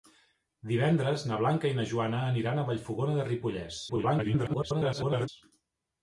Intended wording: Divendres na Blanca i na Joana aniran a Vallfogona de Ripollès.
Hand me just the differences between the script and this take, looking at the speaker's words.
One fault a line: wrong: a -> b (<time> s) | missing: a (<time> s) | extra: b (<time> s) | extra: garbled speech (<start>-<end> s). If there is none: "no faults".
extra: garbled speech (3.9-5.3 s)